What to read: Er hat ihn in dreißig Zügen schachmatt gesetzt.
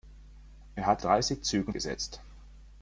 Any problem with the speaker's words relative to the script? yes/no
yes